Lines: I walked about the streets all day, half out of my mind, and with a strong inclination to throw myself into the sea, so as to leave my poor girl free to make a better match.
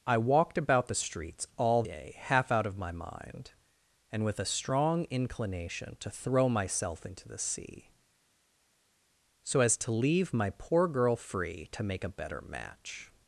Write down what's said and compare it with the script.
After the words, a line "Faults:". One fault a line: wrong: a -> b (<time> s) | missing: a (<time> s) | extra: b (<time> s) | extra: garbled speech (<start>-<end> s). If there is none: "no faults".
I walked about the streets all day, half out of my mind, and with a strong inclination to throw myself into the sea, so as to leave my poor girl free to make a better match.
Faults:
no faults